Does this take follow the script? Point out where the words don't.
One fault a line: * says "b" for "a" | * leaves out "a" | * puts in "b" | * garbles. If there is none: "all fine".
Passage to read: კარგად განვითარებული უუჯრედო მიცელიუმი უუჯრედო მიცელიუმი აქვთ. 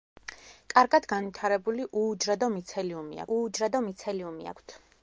all fine